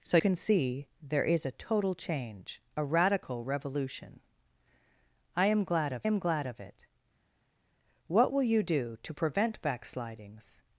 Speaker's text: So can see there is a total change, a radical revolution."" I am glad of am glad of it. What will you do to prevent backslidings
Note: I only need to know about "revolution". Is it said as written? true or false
true